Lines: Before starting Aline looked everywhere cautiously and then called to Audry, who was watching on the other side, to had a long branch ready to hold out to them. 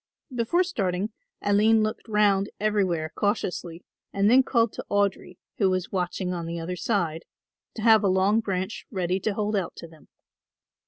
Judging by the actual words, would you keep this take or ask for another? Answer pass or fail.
fail